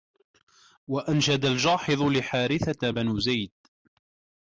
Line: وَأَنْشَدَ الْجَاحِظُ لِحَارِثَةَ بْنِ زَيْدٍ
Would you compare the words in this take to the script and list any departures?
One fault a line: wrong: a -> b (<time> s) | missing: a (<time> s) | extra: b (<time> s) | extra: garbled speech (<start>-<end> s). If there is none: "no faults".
no faults